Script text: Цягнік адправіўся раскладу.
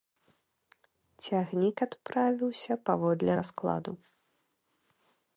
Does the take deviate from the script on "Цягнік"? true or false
false